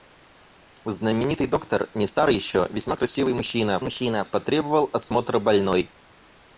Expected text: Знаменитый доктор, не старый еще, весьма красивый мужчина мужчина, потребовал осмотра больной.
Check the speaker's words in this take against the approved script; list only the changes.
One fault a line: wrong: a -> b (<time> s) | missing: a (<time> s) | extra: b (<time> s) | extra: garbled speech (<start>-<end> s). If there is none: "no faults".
no faults